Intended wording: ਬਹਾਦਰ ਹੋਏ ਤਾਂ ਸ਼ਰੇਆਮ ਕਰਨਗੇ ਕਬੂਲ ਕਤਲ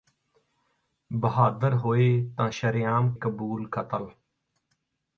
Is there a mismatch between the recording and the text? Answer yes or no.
yes